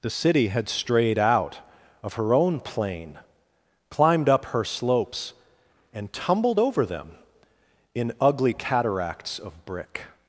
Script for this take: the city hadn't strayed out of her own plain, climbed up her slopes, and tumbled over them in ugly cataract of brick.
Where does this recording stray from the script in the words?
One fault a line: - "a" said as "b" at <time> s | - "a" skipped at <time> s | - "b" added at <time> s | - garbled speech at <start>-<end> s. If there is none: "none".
- "hadn't" said as "had" at 0.5 s
- "cataract" said as "cataracts" at 8.5 s